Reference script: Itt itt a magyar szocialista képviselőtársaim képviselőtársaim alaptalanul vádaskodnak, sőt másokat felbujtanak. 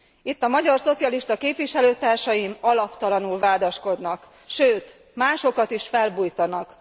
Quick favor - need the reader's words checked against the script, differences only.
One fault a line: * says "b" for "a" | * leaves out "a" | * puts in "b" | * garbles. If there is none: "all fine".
* leaves out "itt"
* leaves out "képviselőtársaim"
* puts in "is"